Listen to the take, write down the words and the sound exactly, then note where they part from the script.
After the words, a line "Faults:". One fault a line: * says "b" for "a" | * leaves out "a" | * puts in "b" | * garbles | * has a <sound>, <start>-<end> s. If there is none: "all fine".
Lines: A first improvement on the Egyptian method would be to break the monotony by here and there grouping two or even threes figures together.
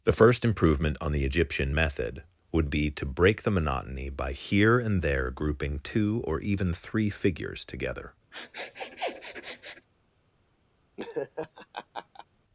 The first improvement on the Egyptian method would be to break the monotony by here and there grouping two or even three figures together.
Faults:
* says "The" for "A"
* says "three" for "threes"
* has a sniff, 8.3-9.9 s
* has a laugh, 11.0-12.3 s